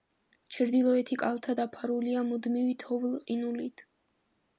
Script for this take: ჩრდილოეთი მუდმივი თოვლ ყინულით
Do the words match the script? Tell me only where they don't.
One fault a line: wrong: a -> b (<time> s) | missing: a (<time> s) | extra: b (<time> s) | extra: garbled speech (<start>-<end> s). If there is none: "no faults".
extra: კალთა დაფარულია (1.2 s)